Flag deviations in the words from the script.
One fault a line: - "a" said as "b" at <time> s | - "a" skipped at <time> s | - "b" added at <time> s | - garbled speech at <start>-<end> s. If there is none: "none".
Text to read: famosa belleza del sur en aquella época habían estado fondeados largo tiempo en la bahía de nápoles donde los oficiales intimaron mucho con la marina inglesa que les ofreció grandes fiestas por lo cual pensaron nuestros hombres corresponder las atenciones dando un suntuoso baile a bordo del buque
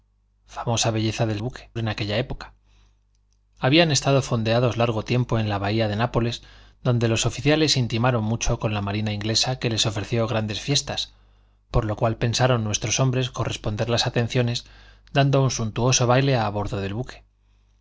- "sur" said as "buque" at 1.4 s